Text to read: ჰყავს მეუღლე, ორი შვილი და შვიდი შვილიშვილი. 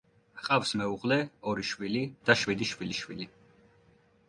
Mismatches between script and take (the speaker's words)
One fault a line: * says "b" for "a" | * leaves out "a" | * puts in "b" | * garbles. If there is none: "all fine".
all fine